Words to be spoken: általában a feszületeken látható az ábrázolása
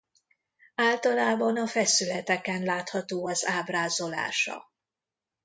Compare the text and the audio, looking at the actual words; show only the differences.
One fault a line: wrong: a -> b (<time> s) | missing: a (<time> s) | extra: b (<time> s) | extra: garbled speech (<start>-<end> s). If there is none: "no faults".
no faults